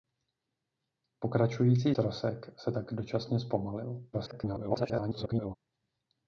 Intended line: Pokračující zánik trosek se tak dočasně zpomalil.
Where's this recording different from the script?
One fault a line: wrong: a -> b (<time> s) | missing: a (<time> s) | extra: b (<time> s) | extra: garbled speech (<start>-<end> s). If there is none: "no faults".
missing: zánik (1.9 s)
extra: garbled speech (4.1-5.5 s)